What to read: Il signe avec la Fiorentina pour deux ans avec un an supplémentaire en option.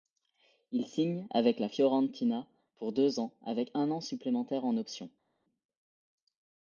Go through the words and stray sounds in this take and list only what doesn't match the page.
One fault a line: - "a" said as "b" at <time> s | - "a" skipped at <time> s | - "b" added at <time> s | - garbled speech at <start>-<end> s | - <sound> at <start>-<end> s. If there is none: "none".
none